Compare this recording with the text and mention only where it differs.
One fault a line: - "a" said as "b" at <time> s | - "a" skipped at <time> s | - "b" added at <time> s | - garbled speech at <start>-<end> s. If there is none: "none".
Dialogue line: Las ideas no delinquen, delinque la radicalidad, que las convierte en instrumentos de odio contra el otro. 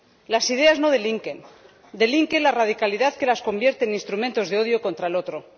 none